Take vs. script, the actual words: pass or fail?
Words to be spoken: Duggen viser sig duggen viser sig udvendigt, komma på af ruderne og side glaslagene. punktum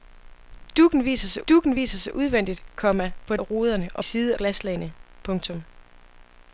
pass